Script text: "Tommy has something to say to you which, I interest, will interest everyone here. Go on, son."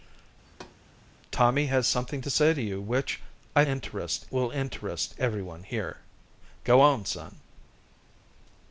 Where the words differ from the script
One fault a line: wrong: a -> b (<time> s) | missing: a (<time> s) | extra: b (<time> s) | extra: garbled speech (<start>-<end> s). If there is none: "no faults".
no faults